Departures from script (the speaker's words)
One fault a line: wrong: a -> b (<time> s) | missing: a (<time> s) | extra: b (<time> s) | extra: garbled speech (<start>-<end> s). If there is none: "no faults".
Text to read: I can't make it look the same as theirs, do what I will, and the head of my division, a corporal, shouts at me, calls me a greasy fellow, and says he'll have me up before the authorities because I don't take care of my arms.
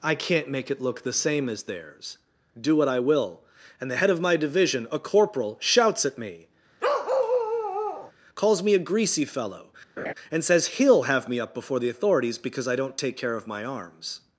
no faults